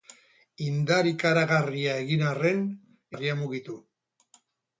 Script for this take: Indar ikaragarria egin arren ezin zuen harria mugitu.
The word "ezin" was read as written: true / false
false